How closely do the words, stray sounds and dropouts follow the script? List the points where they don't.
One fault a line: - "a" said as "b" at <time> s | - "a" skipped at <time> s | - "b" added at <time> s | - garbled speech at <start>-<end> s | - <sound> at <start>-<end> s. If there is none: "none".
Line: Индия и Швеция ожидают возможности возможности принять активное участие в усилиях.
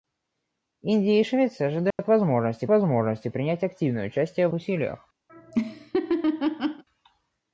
- dropout at 1.9-2.0 s
- laugh at 5.3-6.8 s